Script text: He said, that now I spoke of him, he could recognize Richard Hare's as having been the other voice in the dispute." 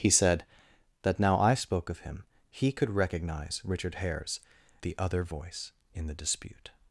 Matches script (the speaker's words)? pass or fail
fail